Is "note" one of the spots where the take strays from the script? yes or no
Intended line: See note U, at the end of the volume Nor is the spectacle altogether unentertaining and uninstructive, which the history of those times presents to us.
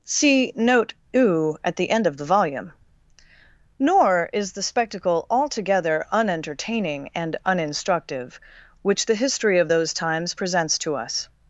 no